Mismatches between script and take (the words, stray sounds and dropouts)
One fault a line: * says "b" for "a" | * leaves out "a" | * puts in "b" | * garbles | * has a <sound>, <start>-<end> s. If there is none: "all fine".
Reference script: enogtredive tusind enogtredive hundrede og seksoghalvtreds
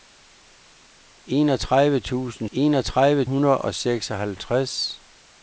all fine